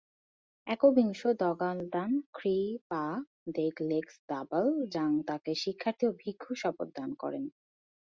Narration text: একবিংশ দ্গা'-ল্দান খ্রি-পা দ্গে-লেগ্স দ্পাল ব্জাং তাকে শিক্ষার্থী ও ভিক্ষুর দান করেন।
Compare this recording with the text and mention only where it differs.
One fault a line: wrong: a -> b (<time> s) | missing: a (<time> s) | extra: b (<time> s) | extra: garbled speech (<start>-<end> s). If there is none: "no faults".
extra: শপথ (6.6 s)